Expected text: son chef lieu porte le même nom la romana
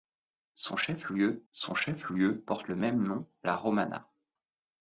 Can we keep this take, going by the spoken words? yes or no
no